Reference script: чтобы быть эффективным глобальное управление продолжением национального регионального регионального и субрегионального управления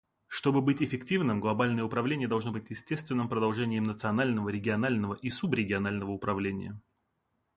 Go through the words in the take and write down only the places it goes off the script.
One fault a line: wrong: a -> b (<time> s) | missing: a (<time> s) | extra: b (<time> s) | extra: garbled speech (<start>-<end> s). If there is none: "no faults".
extra: должно быть естественным (2.3 s)
missing: регионального (5.1 s)